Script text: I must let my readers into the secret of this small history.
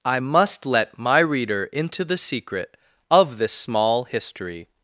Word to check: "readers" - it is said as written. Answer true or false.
false